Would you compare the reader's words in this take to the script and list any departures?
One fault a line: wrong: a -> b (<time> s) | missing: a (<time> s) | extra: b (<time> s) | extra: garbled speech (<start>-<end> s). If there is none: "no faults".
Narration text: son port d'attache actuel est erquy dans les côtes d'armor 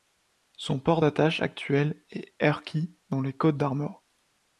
no faults